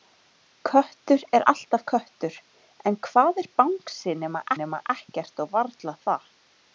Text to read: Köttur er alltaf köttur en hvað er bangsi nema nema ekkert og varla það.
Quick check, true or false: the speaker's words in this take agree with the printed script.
true